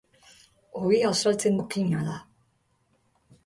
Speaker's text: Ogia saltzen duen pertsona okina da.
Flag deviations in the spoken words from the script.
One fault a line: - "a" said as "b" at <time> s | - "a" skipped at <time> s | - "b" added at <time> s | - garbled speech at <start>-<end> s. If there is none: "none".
- "duen pertsona" skipped at 1.6 s